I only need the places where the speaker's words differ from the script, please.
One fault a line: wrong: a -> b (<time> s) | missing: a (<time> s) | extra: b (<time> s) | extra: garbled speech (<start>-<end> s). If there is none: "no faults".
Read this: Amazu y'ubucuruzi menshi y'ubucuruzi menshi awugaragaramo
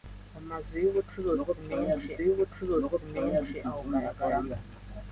no faults